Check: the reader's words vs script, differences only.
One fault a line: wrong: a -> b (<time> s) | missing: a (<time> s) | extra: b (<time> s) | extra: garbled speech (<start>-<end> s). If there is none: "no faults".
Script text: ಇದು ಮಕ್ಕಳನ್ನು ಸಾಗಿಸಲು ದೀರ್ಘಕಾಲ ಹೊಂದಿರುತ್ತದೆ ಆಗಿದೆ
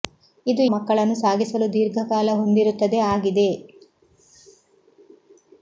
no faults